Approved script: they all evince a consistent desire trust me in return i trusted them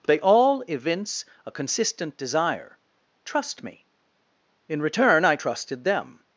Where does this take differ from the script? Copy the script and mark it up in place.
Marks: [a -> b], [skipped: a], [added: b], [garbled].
they all evince a consistent desire trust me in return i trusted them